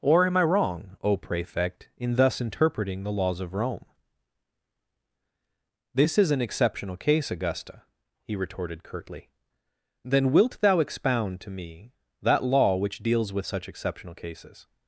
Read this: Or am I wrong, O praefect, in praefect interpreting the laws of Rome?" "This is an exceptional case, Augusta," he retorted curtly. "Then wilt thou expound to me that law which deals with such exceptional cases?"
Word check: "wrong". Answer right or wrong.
right